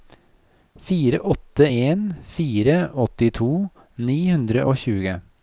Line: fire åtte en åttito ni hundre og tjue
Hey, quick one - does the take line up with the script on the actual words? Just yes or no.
no